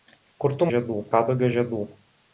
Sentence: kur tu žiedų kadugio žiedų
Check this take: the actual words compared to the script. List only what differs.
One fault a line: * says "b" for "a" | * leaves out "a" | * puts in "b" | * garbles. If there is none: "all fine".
all fine